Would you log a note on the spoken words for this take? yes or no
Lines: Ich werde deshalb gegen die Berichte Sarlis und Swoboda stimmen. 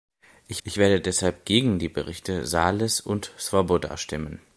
yes